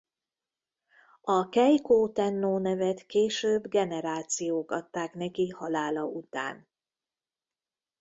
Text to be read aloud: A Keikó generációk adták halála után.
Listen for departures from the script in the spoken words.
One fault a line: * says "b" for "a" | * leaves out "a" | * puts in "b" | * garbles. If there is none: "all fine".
* puts in "tennó nevet később"
* puts in "neki"